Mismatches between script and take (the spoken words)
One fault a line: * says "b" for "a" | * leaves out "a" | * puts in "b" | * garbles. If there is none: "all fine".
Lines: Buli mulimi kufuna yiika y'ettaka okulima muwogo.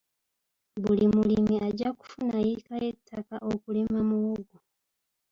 * puts in "ajja"